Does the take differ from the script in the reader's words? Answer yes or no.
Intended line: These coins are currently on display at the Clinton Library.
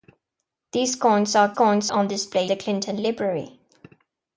yes